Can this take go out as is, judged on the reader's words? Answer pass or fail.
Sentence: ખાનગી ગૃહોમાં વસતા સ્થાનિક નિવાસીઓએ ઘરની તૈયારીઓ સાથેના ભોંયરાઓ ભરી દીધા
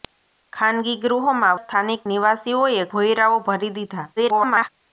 fail